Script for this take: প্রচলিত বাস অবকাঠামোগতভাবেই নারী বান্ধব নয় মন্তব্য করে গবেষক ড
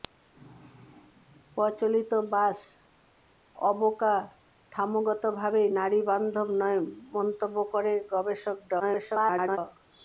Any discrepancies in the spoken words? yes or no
yes